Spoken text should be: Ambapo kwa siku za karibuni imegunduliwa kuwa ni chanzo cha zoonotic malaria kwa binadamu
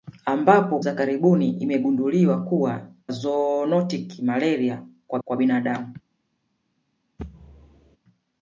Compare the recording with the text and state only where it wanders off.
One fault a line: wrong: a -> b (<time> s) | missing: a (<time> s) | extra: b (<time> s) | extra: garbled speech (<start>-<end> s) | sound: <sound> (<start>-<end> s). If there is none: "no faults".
missing: kwa siku (0.8 s)
missing: ni chanzo cha (2.9 s)
extra: kwa (5.2 s)
sound: thud (7.2-8.0 s)